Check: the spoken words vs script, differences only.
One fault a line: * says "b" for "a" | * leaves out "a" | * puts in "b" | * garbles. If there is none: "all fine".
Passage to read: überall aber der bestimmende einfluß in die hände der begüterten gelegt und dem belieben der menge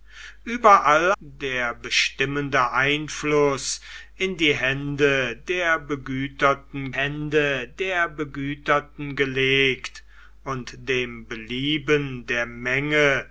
* leaves out "aber"
* puts in "hände der begüterten"